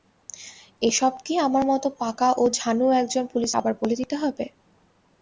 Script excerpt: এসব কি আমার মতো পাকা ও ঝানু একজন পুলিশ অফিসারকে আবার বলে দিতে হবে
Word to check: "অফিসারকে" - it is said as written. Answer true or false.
false